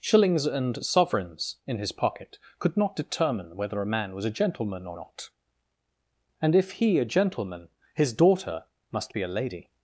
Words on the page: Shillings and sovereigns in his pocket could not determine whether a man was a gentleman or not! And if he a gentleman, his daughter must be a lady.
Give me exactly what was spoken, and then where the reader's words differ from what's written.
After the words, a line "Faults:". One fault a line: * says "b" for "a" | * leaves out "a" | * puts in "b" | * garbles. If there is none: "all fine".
Shillings and sovereigns in his pocket could not determine whether a man was a gentleman or not! And if he a gentleman, his daughter must be a lady.
Faults:
all fine